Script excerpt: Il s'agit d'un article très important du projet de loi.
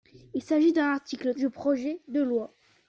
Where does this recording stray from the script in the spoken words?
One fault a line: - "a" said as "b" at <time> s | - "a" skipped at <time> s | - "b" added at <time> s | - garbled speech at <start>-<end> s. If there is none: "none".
- "très important" skipped at 1.3 s